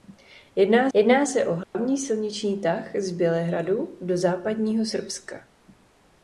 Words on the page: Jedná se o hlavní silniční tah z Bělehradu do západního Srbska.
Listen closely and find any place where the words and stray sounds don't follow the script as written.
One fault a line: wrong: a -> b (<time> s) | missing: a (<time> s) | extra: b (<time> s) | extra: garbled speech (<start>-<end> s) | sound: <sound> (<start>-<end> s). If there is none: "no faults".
extra: jedná (0.9 s)
sound: dropout (1.6-1.7 s)